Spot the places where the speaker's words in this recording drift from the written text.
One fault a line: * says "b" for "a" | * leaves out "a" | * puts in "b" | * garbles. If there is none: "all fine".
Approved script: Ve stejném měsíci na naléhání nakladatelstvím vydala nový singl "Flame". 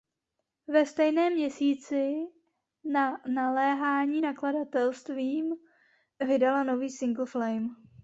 all fine